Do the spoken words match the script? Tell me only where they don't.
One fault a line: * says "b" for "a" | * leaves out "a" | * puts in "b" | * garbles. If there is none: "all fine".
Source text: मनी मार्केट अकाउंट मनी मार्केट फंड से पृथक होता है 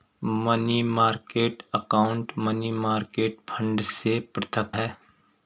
* leaves out "होता"